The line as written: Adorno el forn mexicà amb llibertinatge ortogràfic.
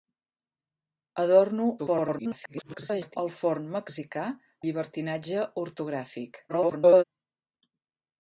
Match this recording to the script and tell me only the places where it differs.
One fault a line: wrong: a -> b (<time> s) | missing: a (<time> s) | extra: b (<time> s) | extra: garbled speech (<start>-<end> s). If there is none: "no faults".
extra: garbled speech (1.8-3.2 s)
missing: amb (4.3 s)
extra: garbled speech (6.5-7.0 s)